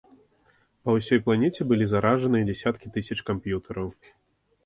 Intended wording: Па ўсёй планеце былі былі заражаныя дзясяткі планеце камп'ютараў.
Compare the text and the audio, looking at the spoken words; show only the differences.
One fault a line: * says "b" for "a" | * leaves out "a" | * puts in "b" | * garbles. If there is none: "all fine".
* leaves out "былі"
* says "тысяч" for "планеце"